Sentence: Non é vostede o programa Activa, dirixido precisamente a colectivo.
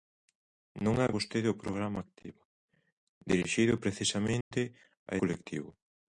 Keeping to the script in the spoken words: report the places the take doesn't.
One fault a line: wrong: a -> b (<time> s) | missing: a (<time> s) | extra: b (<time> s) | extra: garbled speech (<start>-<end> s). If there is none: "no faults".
no faults